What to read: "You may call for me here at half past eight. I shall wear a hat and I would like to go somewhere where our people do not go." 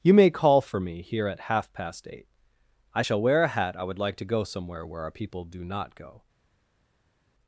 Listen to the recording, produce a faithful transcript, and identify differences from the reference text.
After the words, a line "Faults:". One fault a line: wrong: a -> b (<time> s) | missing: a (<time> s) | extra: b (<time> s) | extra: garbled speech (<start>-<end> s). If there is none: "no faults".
"You may call for me here at half past eight. I shall wear a hat I would like to go somewhere where our people do not go."
Faults:
missing: and (3.8 s)